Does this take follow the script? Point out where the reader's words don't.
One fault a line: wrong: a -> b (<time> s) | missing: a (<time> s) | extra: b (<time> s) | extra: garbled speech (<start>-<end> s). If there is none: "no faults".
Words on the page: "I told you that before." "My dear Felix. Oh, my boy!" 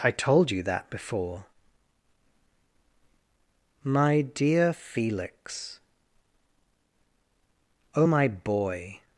no faults